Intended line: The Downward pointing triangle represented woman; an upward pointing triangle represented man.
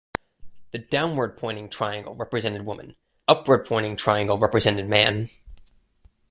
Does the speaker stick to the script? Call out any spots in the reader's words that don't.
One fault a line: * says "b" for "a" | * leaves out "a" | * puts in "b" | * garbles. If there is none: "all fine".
* leaves out "an"